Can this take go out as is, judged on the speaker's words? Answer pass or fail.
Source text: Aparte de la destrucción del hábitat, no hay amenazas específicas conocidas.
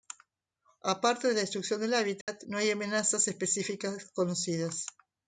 pass